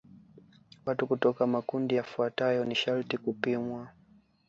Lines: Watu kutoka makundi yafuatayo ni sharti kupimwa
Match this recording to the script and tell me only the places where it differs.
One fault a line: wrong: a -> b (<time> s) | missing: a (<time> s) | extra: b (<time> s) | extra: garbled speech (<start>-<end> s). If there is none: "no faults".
no faults